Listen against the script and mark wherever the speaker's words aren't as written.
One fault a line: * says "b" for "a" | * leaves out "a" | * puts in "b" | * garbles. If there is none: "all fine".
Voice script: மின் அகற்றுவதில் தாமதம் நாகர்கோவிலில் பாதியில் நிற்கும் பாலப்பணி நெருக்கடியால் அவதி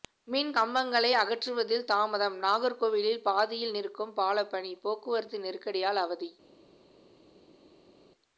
* puts in "கம்பங்களை"
* puts in "போக்குவரத்து"